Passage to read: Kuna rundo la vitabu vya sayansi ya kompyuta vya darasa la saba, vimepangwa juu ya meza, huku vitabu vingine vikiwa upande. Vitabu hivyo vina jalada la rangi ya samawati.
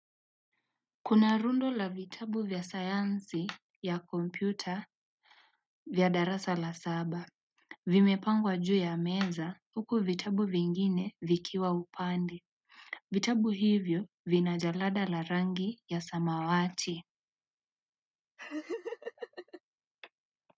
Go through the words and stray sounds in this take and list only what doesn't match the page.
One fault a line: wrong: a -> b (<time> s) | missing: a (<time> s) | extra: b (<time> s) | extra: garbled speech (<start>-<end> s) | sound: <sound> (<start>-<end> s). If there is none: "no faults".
sound: laugh (18.4-19.6 s)